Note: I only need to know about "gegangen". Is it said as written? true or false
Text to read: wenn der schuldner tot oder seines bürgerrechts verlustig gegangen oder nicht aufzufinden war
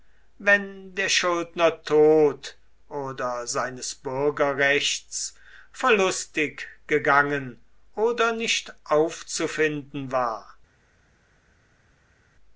true